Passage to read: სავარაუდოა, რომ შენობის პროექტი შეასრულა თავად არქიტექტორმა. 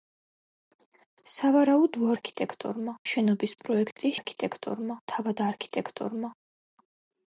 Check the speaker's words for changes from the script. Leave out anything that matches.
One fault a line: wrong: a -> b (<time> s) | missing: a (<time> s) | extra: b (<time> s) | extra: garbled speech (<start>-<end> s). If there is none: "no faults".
wrong: რომ -> არქიტექტორმა (2.1 s)
wrong: შეასრულა -> არქიტექტორმა (4.2 s)